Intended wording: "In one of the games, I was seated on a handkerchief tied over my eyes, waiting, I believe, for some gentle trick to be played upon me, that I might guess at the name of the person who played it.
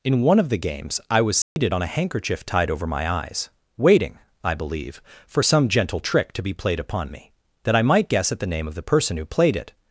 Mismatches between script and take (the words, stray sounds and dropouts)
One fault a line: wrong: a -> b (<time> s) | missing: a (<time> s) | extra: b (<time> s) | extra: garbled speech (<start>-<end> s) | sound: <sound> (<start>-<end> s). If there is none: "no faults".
sound: dropout (1.4-1.6 s)